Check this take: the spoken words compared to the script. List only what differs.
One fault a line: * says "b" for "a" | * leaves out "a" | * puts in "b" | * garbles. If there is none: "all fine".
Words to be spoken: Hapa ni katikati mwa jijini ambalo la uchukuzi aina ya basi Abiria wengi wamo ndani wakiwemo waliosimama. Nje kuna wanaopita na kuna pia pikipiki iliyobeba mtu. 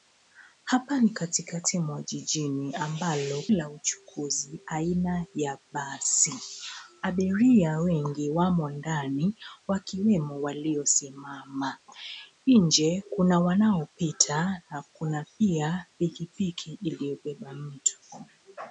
all fine